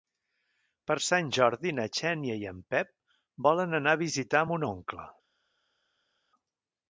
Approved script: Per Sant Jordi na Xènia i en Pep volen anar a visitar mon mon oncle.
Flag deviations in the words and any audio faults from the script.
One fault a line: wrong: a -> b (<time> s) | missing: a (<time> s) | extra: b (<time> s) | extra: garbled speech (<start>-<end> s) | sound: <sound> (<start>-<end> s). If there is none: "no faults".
missing: mon (4.7 s)